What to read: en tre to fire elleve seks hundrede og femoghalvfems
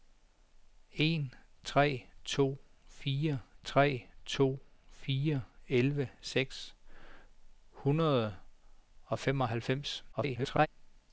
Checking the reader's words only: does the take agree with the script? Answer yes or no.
no